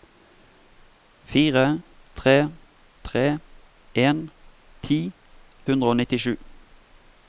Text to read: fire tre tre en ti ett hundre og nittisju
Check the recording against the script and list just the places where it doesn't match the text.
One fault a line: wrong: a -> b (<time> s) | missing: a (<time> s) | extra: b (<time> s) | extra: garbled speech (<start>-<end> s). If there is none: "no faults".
missing: ett (5.0 s)